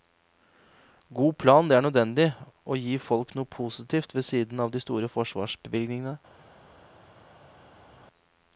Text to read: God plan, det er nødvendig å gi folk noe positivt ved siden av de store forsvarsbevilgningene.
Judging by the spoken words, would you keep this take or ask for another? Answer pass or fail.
pass